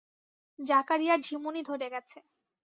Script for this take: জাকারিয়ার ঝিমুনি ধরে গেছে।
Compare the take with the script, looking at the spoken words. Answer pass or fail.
pass